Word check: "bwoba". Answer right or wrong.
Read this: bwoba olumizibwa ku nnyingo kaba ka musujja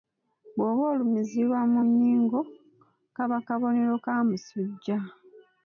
right